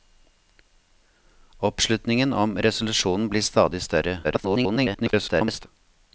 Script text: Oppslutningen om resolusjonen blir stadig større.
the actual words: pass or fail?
fail